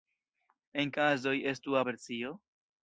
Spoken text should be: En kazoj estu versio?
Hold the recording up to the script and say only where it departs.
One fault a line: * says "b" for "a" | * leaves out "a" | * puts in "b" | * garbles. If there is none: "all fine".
all fine